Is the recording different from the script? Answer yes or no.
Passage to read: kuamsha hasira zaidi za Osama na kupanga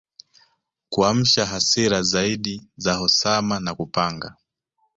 no